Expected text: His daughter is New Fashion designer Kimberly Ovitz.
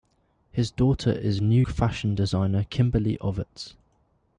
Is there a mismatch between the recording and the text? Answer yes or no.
no